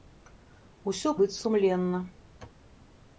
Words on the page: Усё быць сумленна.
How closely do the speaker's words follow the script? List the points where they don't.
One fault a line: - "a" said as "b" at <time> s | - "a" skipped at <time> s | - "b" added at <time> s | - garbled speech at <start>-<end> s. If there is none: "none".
none